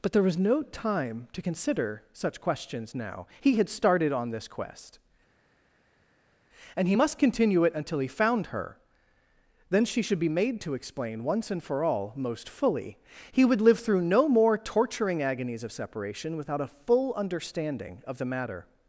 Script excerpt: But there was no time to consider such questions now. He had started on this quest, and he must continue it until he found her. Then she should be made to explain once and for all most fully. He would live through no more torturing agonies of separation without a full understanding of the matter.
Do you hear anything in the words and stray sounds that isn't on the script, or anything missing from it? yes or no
no